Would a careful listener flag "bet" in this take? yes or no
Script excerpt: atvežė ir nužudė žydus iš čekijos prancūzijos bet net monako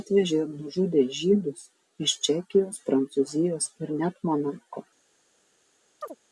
yes